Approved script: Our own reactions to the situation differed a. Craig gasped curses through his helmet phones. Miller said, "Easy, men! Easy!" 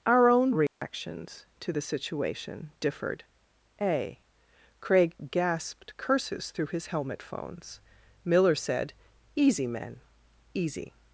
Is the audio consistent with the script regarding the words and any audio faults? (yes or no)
no